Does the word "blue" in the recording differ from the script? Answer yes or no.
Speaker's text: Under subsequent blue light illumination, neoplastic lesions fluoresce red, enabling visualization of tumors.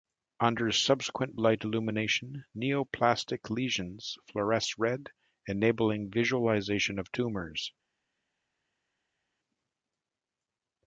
yes